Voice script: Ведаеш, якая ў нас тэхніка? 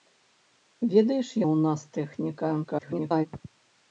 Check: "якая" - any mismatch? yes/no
yes